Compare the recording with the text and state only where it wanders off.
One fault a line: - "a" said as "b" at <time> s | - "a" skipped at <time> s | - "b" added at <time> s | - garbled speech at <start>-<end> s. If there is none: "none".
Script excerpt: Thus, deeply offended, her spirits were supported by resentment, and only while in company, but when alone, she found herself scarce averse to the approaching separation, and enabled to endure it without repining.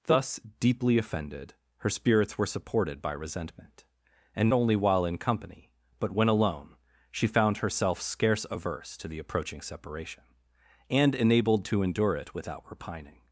none